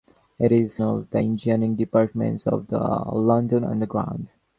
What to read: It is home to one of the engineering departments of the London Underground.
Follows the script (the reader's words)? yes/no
no